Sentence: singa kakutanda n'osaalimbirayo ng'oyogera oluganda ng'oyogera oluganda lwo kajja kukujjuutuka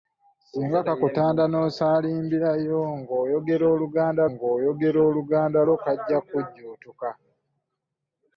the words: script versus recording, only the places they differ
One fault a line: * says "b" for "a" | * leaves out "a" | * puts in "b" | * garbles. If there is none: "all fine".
all fine